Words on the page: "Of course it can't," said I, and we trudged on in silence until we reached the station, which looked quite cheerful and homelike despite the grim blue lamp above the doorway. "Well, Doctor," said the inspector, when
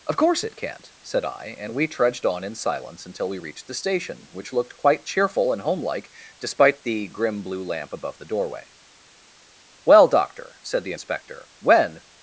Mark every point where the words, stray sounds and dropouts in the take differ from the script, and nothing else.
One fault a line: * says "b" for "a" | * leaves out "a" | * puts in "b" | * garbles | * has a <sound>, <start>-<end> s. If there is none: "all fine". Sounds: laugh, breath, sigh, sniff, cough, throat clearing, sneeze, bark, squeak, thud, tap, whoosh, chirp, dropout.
all fine